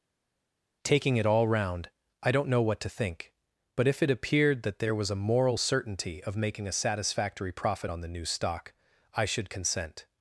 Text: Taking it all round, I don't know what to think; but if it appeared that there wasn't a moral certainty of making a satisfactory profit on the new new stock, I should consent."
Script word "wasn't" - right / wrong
wrong